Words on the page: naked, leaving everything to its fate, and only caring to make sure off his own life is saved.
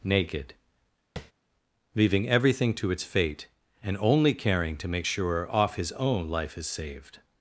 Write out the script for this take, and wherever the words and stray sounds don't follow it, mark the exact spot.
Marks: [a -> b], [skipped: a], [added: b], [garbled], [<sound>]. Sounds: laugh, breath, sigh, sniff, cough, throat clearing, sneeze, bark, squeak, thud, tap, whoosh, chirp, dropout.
naked, [tap] leaving everything to its fate, and only caring to make sure off his own life is saved.